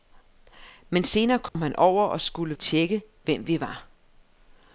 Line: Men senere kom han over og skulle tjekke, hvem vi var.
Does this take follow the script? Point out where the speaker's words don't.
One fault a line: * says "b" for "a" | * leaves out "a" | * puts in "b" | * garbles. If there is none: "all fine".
all fine